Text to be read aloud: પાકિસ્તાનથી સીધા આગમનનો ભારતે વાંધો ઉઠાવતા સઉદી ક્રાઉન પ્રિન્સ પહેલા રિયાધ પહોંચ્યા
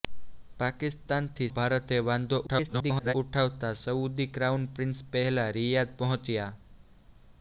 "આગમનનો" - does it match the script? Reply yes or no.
no